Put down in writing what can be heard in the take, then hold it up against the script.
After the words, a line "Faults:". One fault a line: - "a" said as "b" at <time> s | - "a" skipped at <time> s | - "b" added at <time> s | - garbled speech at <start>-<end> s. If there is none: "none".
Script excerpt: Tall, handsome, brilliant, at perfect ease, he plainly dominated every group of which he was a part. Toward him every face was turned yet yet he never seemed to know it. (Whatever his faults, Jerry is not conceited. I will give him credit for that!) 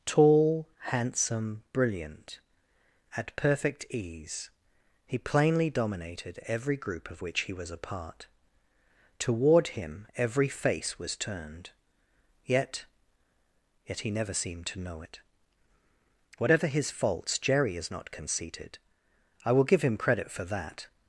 Tall, handsome, brilliant, at perfect ease, he plainly dominated every group of which he was a part. Toward him every face was turned yet yet he never seemed to know it. (Whatever his faults, Jerry is not conceited. I will give him credit for that!)
Faults:
none